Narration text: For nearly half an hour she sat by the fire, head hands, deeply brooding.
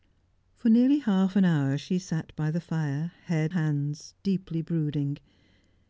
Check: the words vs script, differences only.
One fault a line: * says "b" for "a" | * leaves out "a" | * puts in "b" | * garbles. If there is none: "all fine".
all fine